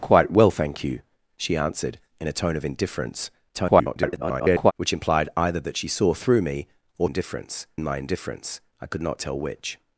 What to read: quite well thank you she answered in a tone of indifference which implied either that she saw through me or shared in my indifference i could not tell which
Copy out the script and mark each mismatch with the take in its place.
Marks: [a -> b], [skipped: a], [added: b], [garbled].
quite well thank you she answered in a tone of indifference [garbled] which implied either that she saw through me or [shared -> indifference] in my indifference i could not tell which